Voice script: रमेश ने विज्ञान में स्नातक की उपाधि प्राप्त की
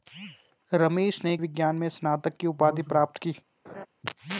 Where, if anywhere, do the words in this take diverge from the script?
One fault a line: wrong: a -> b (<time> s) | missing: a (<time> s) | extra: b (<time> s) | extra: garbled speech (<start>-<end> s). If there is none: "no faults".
no faults